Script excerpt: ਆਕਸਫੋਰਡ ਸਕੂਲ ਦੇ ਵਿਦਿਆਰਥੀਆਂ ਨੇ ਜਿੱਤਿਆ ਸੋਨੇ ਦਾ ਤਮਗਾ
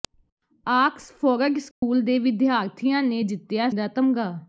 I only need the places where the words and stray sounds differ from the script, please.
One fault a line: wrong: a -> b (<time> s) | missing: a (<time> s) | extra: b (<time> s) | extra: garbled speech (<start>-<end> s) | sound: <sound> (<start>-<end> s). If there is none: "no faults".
sound: dropout (1.7-1.8 s)
missing: ਸੋਨੇ (3.7 s)